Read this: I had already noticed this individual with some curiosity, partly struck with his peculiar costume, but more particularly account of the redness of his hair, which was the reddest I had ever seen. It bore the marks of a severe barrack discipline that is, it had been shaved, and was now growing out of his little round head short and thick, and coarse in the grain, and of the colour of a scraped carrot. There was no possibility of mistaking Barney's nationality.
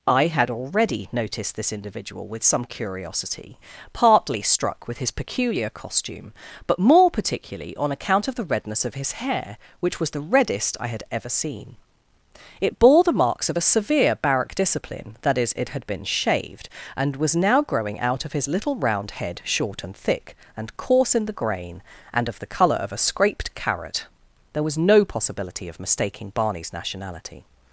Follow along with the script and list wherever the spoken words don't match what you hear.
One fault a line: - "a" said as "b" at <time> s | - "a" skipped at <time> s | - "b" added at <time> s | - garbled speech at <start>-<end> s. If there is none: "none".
- "on" added at 7.8 s